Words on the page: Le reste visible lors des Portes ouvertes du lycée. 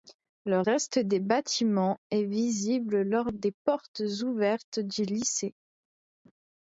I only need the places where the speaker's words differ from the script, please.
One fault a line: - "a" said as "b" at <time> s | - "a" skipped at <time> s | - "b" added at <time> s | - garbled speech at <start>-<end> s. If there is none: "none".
- "des bâtiments est" added at 1.0 s